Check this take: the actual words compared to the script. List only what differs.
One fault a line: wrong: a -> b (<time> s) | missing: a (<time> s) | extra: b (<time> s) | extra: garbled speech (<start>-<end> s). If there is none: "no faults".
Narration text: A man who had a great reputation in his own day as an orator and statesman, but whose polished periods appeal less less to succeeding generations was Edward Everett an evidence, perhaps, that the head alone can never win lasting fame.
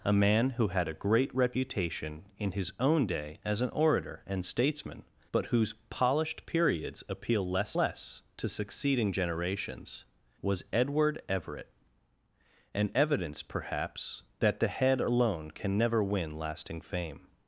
no faults